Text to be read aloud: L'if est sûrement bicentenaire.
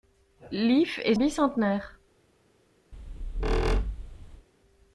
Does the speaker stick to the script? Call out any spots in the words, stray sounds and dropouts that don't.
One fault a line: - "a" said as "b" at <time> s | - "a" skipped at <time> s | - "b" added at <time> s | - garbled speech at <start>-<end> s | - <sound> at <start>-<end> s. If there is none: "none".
- "sûrement" skipped at 1.1 s
- squeak at 2.9-4.5 s